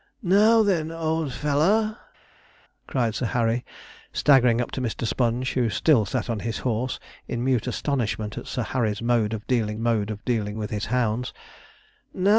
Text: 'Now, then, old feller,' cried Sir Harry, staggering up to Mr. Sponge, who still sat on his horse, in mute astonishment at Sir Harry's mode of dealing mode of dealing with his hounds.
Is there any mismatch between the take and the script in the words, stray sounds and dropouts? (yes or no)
no